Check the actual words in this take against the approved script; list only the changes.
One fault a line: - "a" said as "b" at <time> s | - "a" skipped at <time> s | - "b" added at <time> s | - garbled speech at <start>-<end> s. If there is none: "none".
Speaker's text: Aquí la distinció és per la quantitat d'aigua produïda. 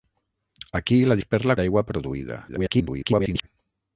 - "distinció" skipped at 1.2 s
- "quantitat" skipped at 1.6 s
- garbled speech at 2.5-3.5 s